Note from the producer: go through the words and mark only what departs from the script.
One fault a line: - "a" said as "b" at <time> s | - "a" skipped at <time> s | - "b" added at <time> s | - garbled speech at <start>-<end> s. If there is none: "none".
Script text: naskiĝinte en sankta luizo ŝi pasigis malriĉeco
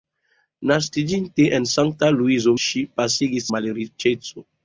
none